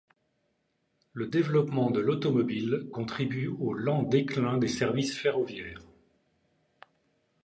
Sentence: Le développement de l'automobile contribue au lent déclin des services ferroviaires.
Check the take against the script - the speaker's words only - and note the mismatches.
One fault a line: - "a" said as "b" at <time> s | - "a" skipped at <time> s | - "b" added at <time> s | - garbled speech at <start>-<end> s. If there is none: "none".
none